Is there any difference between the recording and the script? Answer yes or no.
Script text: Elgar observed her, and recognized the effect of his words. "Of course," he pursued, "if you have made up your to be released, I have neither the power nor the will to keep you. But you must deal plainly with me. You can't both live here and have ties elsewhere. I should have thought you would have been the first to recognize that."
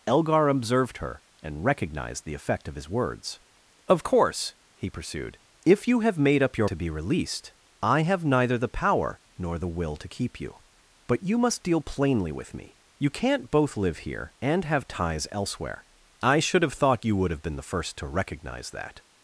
no